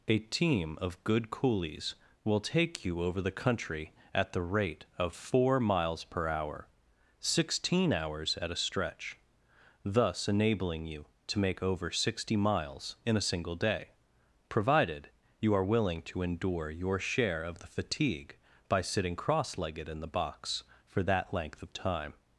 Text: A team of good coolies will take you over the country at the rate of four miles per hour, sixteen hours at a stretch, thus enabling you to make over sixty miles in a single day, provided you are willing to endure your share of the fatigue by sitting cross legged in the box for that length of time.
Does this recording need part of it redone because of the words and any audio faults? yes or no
no